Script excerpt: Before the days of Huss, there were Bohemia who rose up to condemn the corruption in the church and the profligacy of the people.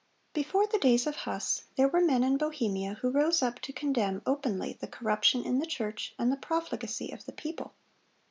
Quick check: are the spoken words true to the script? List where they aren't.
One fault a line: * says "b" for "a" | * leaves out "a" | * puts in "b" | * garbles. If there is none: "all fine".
* puts in "men in"
* puts in "openly"